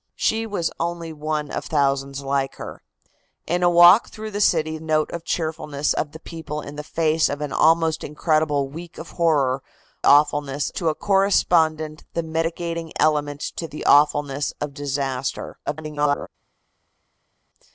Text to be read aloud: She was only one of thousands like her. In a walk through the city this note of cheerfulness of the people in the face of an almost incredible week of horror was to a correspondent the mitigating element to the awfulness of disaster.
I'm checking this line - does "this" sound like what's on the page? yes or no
no